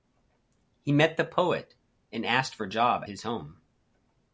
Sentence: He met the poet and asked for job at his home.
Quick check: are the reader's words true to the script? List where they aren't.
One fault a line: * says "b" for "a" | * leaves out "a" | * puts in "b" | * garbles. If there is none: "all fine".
* leaves out "at"